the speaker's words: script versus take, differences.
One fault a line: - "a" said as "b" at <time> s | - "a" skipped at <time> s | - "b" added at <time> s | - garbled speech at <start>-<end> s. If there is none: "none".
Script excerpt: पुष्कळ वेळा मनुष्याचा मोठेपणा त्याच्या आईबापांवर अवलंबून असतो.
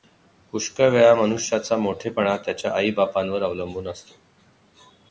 none